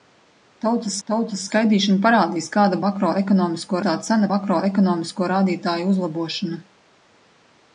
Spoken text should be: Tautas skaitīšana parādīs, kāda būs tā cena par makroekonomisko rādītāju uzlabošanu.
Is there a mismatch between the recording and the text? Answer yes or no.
yes